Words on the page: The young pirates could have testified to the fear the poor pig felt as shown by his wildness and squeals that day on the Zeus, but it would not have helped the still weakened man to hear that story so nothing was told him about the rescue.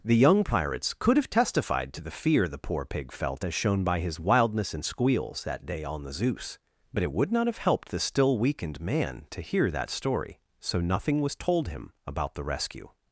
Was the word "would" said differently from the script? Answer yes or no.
no